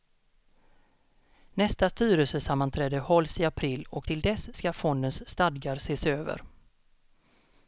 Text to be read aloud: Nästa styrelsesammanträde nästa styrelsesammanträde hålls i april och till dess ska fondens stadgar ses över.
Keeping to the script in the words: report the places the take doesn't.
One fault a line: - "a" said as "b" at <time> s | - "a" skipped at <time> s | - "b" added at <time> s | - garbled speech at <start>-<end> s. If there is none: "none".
- "nästa styrelsesammanträde" skipped at 3.0 s